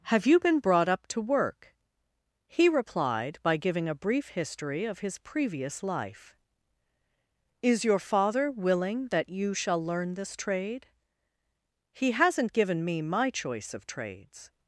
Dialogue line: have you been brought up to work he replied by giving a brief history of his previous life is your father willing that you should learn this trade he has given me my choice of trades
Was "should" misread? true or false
true